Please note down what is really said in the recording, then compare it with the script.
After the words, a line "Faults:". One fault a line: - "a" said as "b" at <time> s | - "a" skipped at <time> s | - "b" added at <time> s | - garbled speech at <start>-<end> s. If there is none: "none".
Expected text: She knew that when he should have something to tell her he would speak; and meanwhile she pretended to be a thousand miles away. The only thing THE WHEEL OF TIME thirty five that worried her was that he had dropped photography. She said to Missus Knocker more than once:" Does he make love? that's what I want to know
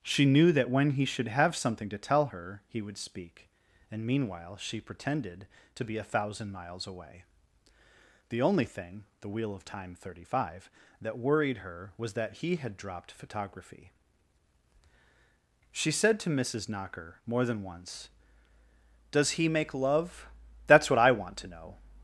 She knew that when he should have something to tell her he would speak; and meanwhile she pretended to be a thousand miles away. The only thing THE WHEEL OF TIME thirty five that worried her was that he had dropped photography. She said to Missus Knocker more than once:" Does he make love? that's what I want to know
Faults:
none